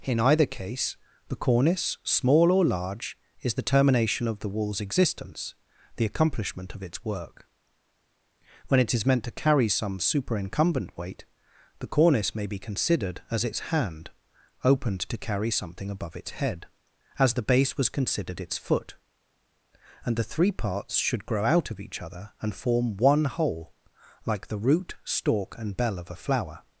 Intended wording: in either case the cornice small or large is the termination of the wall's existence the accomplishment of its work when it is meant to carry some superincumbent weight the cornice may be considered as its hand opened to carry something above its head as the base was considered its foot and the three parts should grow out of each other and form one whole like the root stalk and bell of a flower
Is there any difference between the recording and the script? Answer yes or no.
no